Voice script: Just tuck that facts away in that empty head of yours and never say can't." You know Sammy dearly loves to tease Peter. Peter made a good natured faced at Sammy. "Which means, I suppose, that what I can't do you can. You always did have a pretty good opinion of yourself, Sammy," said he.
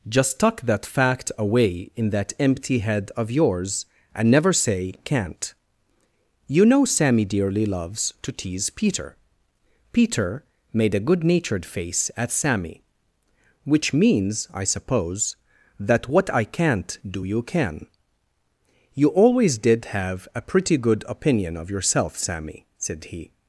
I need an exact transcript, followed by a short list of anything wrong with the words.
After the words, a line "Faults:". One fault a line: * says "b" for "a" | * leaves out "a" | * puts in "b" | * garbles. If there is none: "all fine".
Just tuck that fact away in that empty head of yours and never say can't." You know Sammy dearly loves to tease Peter. Peter made a good natured face at Sammy. "Which means, I suppose, that what I can't do you can. You always did have a pretty good opinion of yourself, Sammy," said he.
Faults:
* says "fact" for "facts"
* says "face" for "faced"